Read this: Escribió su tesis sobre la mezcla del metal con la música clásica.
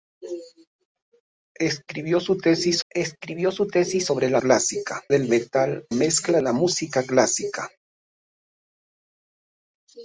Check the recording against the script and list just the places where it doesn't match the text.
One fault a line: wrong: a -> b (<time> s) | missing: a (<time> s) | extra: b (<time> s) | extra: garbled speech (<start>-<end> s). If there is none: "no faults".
extra: escribió su tesis (2.9 s)
wrong: mezcla -> clásica (4.4 s)
wrong: con -> mezcla (5.9 s)